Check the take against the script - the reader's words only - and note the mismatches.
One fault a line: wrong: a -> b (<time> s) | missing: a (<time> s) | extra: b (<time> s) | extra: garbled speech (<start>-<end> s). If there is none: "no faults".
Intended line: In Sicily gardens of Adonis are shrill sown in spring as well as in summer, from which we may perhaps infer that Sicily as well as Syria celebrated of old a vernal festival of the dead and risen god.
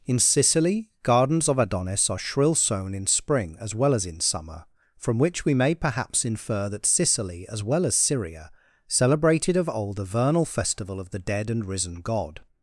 no faults